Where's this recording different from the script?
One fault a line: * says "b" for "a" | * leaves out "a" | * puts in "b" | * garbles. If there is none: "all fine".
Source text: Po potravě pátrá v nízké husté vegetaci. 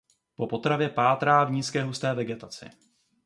all fine